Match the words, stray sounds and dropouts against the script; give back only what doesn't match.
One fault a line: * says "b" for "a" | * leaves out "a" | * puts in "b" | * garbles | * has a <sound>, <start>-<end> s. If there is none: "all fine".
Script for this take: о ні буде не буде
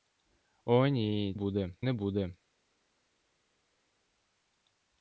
all fine